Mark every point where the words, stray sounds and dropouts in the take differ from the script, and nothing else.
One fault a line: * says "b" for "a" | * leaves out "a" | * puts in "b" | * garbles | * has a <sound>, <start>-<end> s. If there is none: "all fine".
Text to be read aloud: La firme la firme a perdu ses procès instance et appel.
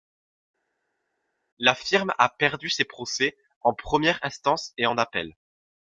* leaves out "la firme"
* puts in "en première"
* puts in "en"